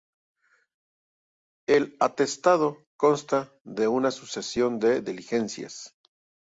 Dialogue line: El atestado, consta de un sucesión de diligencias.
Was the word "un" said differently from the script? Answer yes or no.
yes